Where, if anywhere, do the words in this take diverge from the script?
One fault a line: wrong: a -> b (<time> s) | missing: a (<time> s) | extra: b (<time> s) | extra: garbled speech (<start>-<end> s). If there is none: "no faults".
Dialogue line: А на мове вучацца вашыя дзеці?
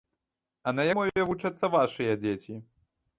no faults